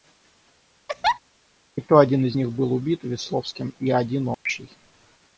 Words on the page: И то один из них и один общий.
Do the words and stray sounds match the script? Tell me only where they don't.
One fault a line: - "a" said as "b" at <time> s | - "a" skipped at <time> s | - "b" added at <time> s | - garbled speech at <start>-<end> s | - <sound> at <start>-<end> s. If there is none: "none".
- laugh at 0.9-1.2 s
- "был убит Весловским" added at 2.5 s
- dropout at 4.3-4.5 s